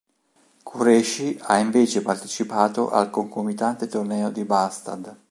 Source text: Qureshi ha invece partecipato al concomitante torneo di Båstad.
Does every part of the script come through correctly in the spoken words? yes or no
yes